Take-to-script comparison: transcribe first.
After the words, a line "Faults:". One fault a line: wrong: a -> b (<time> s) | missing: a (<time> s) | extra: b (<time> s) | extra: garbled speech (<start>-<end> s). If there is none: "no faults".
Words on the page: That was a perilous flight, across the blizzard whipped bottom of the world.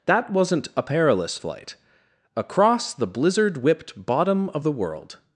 That wasn't a perilous flight, across the blizzard whipped bottom of the world.
Faults:
wrong: was -> wasn't (0.3 s)